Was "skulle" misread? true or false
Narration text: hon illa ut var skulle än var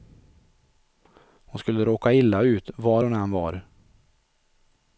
true